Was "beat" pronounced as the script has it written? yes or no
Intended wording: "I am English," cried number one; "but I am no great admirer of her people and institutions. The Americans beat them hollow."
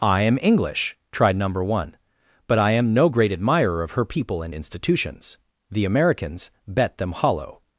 no